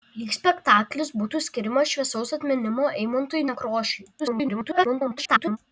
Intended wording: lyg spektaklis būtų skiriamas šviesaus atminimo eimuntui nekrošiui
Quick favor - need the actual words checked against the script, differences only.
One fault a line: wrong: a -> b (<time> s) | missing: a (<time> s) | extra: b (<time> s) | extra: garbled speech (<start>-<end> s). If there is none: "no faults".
extra: garbled speech (4.2-5.6 s)